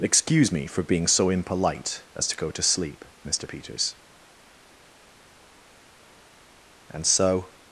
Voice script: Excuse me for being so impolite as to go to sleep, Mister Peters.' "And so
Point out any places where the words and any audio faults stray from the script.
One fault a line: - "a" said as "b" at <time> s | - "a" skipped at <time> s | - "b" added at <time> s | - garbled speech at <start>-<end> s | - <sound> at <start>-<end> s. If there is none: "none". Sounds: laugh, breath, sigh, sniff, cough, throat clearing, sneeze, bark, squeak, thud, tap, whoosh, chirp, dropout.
none